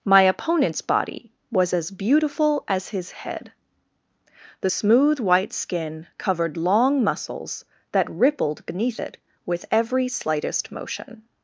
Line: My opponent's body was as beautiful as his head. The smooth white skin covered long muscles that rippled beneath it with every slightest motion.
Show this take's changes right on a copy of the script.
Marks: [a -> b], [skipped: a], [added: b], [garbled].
My opponent's body was as beautiful as his head. The smooth white skin covered long muscles that rippled beneath it with every slightest motion.